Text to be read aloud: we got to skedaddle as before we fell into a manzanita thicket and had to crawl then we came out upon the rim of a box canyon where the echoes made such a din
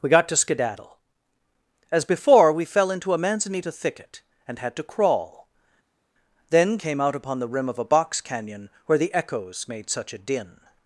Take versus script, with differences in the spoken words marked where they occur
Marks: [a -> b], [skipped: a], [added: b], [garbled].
we got to skedaddle as before we fell into a manzanita thicket and had to crawl then [skipped: we] came out upon the rim of a box canyon where the echoes made such a din